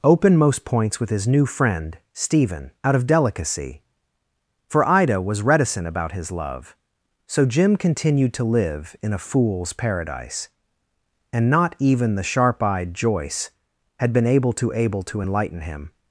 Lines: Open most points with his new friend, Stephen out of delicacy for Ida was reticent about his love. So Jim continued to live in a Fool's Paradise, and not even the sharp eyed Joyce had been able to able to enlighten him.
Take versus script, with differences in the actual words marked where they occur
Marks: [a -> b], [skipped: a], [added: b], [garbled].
Open most points with his new friend, Stephen out of delicacy for Ida was reticent about his love. So Jim continued to live in a Fool's Paradise, and not even the sharp eyed Joyce had been able to able to enlighten him.